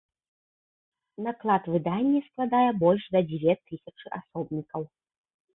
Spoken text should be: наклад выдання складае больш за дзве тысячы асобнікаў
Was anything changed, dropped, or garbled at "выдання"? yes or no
no